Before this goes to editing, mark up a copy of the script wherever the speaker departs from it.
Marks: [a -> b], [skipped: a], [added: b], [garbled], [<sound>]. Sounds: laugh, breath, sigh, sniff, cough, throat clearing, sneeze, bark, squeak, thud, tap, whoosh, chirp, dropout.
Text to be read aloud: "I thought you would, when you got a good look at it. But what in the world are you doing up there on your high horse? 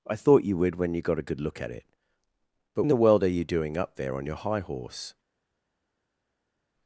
"I thought you would, when you got a good look at it. But [skipped: what] in the world are you doing up there on your high horse?